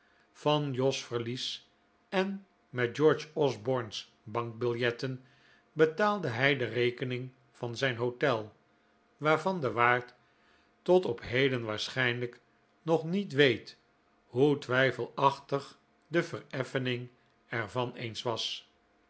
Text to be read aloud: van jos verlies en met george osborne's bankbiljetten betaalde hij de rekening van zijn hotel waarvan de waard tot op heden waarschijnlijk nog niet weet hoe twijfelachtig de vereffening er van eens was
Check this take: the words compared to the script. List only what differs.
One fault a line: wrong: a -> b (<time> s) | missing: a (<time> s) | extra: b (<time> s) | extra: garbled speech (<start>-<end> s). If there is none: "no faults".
no faults